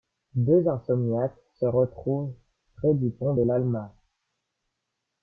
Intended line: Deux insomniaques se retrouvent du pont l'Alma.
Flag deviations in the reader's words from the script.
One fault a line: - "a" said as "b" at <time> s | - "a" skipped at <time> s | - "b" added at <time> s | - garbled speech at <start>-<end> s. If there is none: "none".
- "près" added at 2.8 s
- "de" added at 3.3 s